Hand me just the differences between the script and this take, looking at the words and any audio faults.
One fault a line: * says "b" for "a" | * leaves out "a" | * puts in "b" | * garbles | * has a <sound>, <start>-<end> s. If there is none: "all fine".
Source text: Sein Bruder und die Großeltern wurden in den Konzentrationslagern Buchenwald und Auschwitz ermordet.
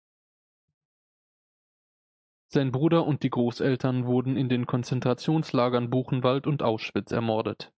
all fine